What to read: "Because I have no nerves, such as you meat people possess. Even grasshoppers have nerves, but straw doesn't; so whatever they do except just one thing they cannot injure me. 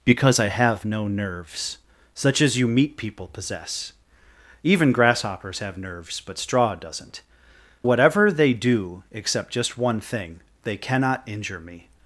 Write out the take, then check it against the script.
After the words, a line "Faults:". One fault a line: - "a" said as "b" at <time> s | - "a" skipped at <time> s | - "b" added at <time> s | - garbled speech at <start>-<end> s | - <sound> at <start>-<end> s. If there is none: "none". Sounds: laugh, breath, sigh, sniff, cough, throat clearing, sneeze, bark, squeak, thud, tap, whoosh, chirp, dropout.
"Because I have no nerves, such as you meat people possess. Even grasshoppers have nerves, but straw doesn't; whatever they do except just one thing they cannot injure me.
Faults:
- "so" skipped at 7.2 s